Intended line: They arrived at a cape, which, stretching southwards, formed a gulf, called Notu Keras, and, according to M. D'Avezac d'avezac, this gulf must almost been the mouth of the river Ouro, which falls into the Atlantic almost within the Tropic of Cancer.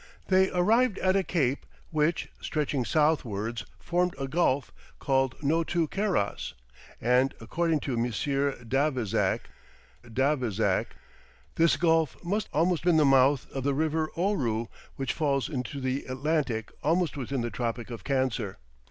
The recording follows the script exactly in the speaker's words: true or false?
true